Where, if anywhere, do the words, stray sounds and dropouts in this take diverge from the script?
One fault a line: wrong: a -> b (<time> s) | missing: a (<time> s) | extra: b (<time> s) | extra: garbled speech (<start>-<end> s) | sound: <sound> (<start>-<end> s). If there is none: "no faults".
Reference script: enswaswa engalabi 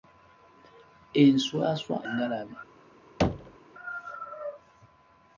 sound: thud (3.2-3.6 s)